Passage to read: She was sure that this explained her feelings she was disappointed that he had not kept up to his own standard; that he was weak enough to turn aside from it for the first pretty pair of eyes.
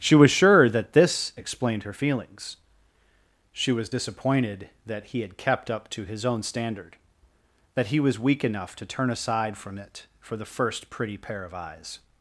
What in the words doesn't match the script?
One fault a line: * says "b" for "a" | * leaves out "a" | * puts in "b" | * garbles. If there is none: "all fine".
* leaves out "not"